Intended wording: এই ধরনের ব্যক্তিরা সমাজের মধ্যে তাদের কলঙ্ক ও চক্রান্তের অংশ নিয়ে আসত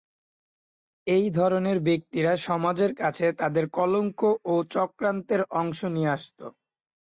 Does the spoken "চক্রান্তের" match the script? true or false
true